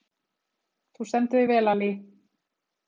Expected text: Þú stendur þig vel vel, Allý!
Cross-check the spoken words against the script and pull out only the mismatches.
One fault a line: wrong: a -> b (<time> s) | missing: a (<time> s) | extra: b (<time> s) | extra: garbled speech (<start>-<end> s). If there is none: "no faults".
missing: vel (1.7 s)